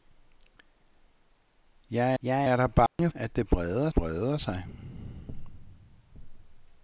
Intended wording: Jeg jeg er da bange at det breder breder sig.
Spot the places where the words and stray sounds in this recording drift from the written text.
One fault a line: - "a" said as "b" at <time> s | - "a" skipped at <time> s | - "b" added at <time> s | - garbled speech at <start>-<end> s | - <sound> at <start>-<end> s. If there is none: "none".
- dropout at 2.9-3.0 s